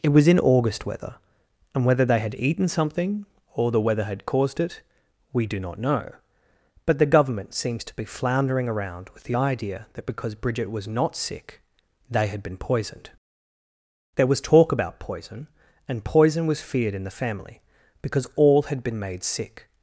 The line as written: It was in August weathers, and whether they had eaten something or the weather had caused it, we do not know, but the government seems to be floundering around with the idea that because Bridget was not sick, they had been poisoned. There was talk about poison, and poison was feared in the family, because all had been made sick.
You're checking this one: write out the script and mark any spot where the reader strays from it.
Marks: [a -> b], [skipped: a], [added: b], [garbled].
It was in August [weathers, -> weather] and whether they had eaten something or the weather had caused it, we do not know, but the government seems to be floundering around with the idea that because Bridget was not sick, they had been poisoned. There was talk about poison, and poison was feared in the family, because all had been made sick.